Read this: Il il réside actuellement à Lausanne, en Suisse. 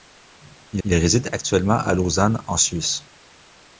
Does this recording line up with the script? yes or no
yes